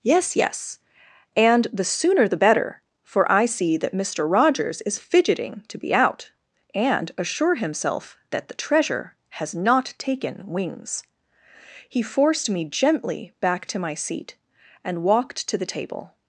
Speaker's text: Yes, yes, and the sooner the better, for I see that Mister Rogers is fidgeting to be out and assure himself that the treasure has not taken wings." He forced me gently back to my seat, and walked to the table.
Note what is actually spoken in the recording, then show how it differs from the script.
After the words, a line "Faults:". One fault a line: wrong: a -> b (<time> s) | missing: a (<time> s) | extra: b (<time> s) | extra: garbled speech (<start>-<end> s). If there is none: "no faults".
Yes, yes, and the sooner the better, for I see that Mister Rogers is fidgeting to be out and assure himself that the treasure has not taken wings." He forced me gently back to my seat, and walked to the table.
Faults:
no faults